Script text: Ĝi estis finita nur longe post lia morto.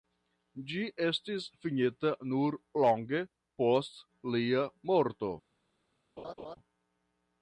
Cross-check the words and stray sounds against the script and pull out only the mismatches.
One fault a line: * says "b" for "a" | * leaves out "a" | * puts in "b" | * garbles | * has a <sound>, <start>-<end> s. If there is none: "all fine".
* has a laugh, 6.2-6.6 s